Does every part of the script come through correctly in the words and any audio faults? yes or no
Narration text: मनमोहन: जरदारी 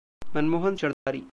no